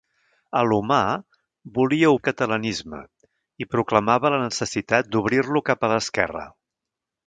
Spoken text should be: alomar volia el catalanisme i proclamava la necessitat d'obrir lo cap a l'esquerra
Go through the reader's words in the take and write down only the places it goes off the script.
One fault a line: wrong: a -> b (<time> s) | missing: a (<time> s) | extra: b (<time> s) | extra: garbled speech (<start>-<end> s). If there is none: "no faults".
no faults